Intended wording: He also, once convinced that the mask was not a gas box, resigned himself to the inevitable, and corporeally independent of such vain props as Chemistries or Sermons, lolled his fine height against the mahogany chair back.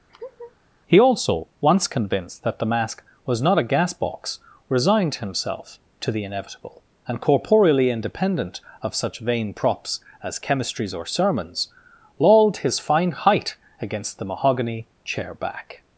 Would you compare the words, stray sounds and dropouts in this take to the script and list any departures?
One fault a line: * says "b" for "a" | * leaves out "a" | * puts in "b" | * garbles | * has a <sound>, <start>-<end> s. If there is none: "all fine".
* has a laugh, 0.1-0.6 s